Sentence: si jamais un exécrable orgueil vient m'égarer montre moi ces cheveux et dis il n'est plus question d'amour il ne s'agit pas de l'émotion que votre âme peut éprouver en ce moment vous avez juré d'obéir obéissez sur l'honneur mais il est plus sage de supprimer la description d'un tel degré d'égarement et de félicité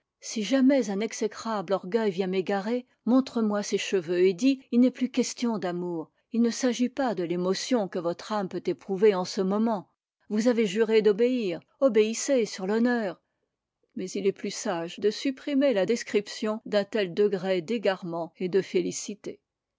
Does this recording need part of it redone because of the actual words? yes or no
no